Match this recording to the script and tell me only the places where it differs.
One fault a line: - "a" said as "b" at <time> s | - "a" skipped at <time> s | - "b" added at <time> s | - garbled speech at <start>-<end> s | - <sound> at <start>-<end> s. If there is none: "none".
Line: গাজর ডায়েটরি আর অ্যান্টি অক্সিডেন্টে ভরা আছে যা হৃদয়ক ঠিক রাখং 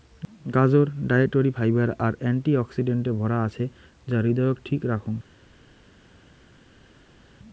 - "ফাইবার" added at 1.5 s